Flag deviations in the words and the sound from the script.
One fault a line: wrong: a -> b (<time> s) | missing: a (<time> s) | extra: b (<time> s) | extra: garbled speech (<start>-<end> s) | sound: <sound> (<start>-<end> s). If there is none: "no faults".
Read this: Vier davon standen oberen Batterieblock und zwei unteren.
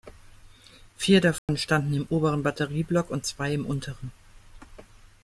sound: dropout (1.4-1.5 s)
extra: im (1.9 s)
extra: im (3.5 s)